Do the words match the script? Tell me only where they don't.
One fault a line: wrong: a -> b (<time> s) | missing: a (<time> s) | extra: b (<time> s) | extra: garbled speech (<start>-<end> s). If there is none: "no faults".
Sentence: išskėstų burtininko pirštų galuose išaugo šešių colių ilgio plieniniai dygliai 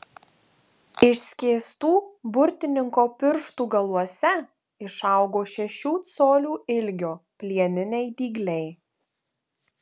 no faults